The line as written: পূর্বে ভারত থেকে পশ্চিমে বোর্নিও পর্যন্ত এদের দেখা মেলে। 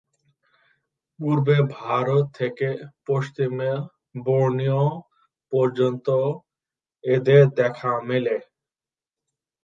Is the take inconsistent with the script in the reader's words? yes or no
no